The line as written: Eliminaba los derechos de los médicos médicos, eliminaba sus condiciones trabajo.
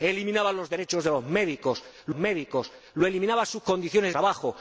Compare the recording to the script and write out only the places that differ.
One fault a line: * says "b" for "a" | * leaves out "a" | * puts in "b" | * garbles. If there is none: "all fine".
all fine